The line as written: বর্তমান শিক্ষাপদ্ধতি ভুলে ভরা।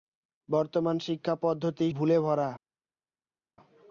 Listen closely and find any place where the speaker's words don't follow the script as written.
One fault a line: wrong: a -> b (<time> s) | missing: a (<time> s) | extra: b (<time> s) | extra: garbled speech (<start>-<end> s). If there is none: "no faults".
no faults